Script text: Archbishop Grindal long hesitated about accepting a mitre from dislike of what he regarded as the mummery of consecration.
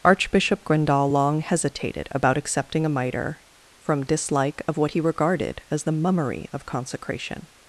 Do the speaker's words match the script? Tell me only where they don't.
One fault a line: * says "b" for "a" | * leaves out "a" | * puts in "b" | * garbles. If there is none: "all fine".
all fine